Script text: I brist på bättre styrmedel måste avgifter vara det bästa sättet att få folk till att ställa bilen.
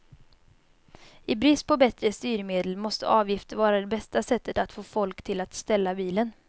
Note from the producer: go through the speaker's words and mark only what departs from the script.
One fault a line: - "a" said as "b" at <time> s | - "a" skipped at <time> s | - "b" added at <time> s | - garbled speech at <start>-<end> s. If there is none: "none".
none